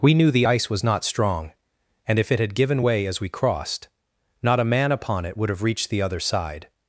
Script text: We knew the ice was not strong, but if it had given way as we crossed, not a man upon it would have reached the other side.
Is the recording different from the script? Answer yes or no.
yes